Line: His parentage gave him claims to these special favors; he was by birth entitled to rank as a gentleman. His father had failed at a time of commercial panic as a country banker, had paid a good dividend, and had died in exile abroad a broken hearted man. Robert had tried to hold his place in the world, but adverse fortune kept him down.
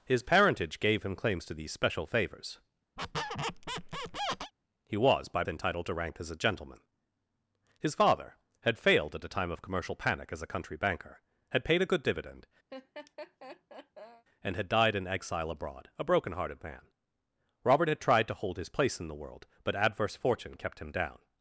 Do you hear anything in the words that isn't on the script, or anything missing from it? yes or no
yes